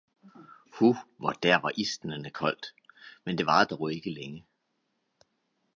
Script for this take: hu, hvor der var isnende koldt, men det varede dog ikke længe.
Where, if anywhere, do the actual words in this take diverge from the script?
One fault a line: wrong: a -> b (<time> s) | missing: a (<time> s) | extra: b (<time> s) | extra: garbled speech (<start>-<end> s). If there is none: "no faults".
no faults